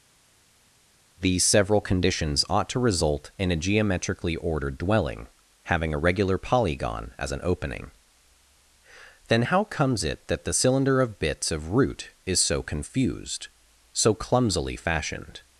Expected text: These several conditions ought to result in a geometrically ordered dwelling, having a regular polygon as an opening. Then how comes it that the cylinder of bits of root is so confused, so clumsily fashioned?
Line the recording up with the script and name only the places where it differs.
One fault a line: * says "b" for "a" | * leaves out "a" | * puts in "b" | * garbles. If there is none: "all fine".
all fine